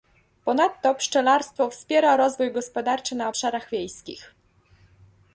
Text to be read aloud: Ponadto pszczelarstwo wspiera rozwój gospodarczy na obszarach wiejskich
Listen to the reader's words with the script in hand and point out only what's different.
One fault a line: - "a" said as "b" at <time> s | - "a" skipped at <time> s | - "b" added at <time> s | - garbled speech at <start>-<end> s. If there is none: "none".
none